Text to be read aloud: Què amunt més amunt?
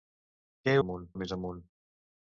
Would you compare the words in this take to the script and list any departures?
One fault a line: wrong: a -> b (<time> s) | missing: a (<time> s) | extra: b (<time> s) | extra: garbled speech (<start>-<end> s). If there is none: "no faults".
no faults